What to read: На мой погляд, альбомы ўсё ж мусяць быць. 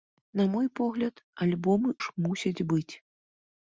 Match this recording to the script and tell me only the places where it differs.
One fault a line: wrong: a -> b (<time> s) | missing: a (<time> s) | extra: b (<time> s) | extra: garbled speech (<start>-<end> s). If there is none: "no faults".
missing: ўсё (1.9 s)